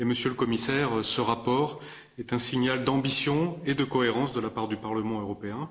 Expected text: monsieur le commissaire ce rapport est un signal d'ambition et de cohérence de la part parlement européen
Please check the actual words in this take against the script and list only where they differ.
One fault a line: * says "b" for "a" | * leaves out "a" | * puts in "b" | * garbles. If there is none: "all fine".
* puts in "du"